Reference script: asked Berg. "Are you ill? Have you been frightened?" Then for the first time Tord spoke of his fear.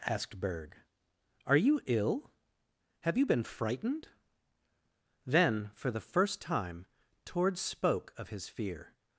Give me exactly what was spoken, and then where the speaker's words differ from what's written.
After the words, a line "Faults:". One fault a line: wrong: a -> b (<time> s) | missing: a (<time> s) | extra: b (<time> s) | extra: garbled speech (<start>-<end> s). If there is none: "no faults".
asked Berg. "Are you ill? Have you been frightened?" Then for the first time Tord spoke of his fear.
Faults:
no faults